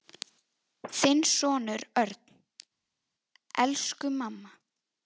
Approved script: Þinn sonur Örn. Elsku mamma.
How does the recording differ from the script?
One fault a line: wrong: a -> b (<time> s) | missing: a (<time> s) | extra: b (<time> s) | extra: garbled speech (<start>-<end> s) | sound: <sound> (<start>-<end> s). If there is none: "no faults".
no faults